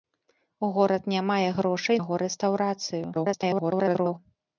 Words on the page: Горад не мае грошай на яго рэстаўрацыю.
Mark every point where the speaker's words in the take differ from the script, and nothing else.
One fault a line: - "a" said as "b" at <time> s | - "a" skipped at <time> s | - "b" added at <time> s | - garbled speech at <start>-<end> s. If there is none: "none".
- "на" skipped at 2.0 s
- garbled speech at 3.1-4.2 s